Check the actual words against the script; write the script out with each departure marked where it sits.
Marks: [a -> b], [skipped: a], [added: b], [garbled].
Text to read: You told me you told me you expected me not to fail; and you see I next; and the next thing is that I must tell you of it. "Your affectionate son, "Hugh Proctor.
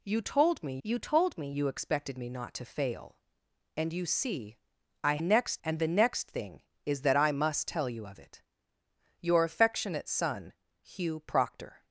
You told me you told me you expected me not to fail; and you see I next; and the next thing is that I must tell you of it. "Your affectionate son, "Hugh Proctor.